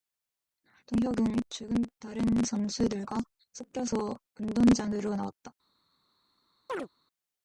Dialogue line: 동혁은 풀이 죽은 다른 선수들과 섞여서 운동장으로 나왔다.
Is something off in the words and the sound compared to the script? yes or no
yes